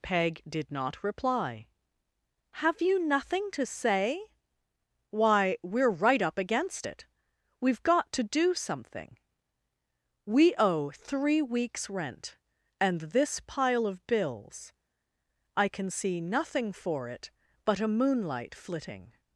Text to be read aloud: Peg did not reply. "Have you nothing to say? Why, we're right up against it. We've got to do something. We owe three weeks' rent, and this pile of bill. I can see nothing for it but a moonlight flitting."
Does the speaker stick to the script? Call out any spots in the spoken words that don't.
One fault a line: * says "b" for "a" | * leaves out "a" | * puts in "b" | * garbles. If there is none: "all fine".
* says "bills" for "bill"